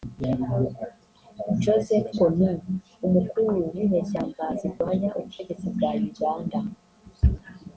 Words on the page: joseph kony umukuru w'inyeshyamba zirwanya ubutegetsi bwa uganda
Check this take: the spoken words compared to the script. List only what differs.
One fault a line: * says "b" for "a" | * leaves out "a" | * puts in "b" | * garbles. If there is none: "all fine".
all fine